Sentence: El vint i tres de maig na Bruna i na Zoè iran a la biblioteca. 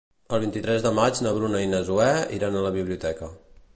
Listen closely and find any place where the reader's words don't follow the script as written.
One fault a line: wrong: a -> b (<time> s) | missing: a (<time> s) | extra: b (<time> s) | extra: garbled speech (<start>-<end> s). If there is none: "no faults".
no faults